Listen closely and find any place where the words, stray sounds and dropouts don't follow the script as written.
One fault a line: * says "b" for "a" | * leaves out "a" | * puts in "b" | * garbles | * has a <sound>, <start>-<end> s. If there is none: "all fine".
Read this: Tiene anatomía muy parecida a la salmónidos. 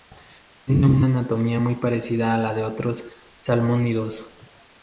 * puts in "una"
* puts in "de otros"